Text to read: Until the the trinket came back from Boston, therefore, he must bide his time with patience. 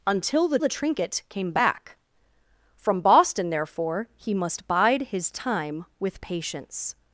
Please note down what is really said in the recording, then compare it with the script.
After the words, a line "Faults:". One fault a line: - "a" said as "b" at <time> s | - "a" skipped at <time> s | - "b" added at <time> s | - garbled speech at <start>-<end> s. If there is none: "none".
Until the the trinket came back from Boston, therefore, he must bide his time with patience.
Faults:
none